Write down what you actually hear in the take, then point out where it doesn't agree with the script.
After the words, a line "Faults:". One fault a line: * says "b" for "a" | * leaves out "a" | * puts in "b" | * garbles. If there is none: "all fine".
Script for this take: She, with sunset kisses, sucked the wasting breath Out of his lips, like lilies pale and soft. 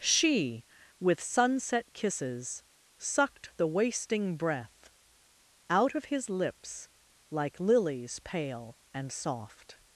She, with sunset kisses, sucked the wasting breath Out of his lips, like lilies pale and soft.
Faults:
all fine